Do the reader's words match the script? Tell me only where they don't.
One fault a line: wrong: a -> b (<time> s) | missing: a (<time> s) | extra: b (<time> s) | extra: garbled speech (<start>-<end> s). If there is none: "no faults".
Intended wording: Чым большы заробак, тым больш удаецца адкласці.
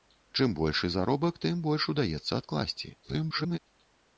extra: garbled speech (3.0-3.6 s)